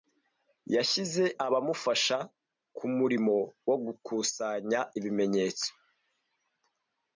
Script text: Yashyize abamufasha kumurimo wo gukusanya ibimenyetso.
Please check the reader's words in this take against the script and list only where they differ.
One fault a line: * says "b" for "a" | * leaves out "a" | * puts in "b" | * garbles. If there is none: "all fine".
all fine